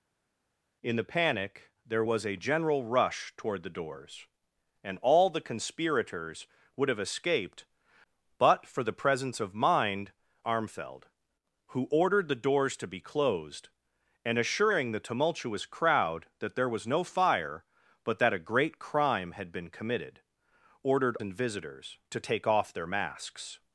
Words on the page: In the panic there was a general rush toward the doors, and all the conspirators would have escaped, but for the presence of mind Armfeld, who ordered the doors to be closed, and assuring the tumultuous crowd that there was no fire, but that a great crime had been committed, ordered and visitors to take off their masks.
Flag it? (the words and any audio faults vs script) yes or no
no